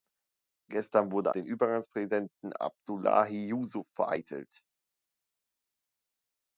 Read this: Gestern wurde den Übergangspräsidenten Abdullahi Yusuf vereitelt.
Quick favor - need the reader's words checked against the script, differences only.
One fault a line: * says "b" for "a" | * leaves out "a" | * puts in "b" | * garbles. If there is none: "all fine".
all fine